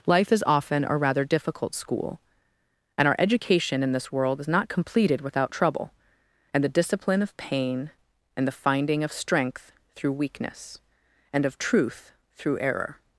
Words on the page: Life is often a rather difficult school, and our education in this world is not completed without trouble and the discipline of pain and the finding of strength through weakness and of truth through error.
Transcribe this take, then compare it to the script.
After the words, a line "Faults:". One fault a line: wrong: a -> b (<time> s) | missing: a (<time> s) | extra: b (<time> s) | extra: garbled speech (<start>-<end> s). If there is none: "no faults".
Life is often a rather difficult school, and our education in this world is not completed without trouble and the discipline of pain and the finding of strength through weakness and of truth through error.
Faults:
no faults